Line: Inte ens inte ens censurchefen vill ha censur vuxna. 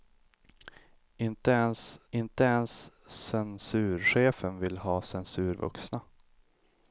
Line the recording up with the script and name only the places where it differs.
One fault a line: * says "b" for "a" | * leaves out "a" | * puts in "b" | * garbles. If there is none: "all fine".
all fine